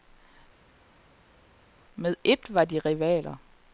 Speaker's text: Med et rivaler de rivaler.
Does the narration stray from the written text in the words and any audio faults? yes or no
yes